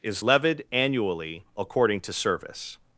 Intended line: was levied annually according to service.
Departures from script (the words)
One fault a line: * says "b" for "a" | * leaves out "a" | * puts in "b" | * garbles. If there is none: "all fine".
* says "is" for "was"